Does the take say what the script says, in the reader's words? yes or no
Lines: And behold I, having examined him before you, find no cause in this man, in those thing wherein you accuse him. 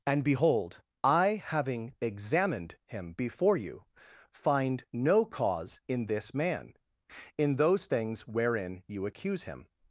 no